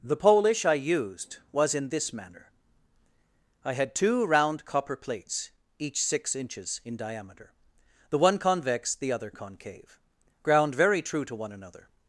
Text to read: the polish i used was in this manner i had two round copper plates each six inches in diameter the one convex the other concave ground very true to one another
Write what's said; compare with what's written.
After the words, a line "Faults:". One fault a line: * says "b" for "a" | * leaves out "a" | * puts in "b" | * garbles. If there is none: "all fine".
the polish i used was in this manner i had two round copper plates each six inches in diameter the one convex the other concave ground very true to one another
Faults:
all fine